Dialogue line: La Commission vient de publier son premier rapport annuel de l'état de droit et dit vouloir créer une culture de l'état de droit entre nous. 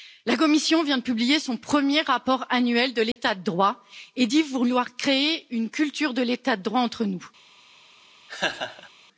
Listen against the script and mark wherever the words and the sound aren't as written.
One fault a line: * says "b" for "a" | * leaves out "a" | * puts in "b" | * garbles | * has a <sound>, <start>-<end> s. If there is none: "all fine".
* has a dropout, 3.1-3.2 s
* has a laugh, 8.3-8.9 s